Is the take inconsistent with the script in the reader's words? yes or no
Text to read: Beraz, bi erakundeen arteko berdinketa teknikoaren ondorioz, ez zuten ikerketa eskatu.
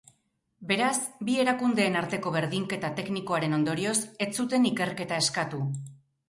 no